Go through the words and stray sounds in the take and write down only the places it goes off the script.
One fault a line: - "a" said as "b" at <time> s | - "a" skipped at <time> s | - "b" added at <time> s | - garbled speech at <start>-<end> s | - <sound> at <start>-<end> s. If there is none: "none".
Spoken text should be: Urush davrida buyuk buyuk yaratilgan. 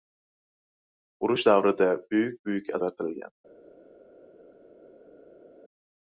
none